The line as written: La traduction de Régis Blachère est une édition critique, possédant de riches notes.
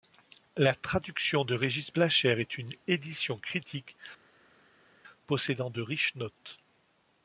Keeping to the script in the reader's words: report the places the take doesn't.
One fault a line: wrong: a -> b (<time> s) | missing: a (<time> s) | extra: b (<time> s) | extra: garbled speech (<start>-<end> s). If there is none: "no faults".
no faults